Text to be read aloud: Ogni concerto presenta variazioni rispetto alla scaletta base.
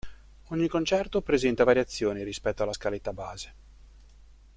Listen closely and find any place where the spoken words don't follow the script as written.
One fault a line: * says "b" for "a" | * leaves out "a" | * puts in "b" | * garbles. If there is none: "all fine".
all fine